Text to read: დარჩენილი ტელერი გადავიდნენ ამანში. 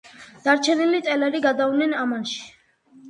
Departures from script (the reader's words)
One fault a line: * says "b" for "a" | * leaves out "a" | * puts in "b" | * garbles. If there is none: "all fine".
all fine